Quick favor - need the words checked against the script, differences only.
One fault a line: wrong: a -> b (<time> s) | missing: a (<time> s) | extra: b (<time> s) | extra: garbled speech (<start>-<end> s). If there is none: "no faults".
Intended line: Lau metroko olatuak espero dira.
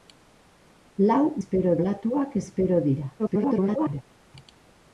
wrong: metroko -> espero (1.4 s)
extra: garbled speech (3.2-4.0 s)